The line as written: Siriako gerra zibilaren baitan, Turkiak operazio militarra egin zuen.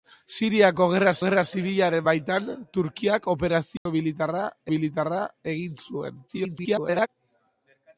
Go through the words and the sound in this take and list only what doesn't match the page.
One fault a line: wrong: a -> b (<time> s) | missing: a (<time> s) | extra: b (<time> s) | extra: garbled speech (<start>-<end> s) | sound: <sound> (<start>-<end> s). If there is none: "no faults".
extra: gerra (1.2 s)
sound: dropout (3.8-3.9 s)
extra: militarra (4.7 s)
extra: garbled speech (6.3-7.1 s)